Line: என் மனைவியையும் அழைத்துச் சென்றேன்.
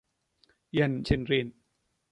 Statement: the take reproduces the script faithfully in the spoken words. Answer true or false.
false